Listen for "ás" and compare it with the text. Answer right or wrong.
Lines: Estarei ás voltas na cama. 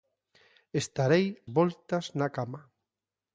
wrong